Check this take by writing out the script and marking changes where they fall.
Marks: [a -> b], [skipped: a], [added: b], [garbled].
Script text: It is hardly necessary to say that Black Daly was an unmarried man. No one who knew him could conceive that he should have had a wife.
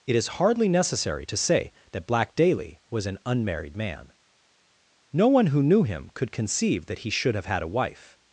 It is hardly necessary to say that Black Daly was an unmarried man. No one who knew him could conceive that he should have had a wife.